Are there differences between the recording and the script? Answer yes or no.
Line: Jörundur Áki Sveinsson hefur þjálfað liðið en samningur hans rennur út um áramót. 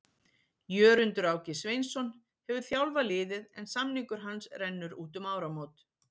no